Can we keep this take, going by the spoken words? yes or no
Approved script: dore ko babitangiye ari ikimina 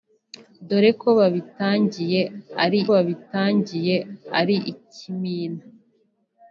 no